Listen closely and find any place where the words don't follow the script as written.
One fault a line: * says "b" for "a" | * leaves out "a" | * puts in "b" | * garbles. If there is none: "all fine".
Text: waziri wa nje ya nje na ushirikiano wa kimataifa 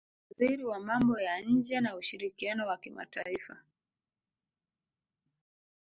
* says "mambo" for "nje"